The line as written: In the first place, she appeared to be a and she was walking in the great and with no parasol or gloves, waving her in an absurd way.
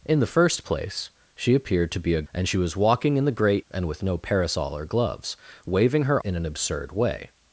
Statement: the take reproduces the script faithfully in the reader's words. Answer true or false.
true